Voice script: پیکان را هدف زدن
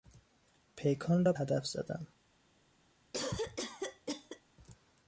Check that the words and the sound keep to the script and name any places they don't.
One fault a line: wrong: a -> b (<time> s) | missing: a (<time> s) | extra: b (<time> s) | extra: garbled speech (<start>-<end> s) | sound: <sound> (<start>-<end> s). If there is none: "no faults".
sound: cough (3.1-4.4 s)